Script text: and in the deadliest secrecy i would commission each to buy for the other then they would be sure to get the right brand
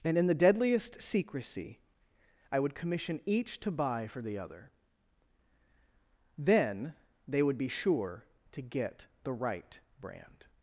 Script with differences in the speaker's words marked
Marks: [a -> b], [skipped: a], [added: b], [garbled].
and in the deadliest secrecy i would commission each to buy for the other then they would be sure to get the right brand